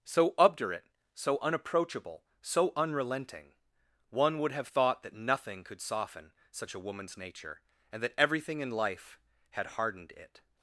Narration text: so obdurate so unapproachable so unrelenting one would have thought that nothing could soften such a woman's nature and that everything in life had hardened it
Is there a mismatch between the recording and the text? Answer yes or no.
no